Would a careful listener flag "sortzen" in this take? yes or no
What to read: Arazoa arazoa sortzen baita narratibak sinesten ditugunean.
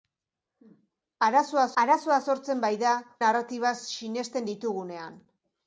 no